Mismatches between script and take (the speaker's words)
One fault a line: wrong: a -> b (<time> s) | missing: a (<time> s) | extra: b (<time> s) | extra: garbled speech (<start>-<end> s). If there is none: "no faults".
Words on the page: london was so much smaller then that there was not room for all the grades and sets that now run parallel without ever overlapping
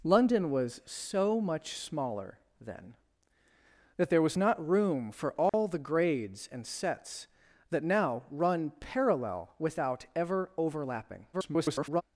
extra: garbled speech (11.3-12.0 s)